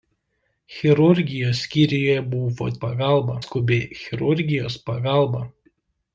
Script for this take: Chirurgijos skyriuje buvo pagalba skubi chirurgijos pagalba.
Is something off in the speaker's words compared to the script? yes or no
no